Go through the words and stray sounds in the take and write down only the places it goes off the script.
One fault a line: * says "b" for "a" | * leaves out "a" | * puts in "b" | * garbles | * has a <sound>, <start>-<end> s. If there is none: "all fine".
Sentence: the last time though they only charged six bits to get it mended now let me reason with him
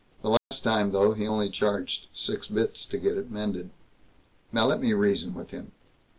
* has a dropout, 0.4-0.5 s
* says "he" for "they"